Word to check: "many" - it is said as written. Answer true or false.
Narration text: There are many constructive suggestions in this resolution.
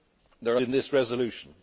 false